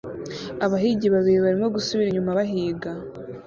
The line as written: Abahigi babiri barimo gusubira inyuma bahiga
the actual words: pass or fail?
pass